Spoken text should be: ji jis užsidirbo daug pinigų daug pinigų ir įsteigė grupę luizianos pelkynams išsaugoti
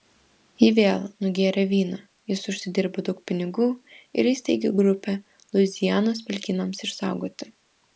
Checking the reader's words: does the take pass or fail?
fail